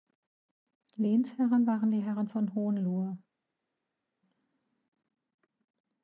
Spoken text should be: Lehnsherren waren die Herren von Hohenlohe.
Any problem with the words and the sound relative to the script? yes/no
no